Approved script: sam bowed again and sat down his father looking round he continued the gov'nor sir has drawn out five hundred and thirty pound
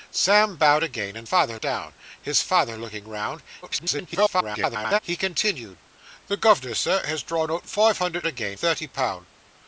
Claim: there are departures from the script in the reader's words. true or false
true